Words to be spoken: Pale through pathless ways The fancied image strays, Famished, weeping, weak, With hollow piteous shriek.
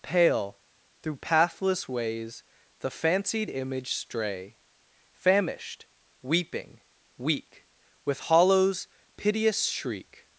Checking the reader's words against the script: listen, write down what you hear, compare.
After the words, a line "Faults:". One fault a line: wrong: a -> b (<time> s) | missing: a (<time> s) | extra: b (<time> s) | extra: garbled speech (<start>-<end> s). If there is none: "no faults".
Pale through pathless ways The fancied image stray, Famished, weeping, weak, With hollows piteous shriek.
Faults:
wrong: strays -> stray (3.9 s)
wrong: hollow -> hollows (8.2 s)